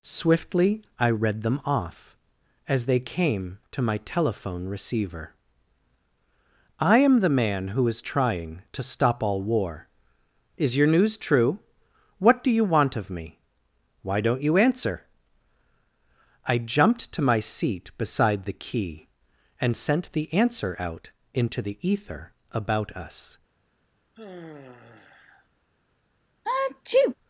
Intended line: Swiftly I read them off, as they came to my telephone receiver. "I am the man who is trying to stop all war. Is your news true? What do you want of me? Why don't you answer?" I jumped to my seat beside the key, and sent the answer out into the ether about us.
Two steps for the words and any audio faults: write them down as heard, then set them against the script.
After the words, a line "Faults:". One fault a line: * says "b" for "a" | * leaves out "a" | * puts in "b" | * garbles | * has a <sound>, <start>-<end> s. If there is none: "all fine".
Swiftly I read them off, as they came to my telephone receiver. "I am the man who is trying to stop all war. Is your news true? What do you want of me? Why don't you answer?" I jumped to my seat beside the key, and sent the answer out into the ether about us.
Faults:
* has a sigh, 24.1-25.5 s
* has a sneeze, 26.5-27.2 s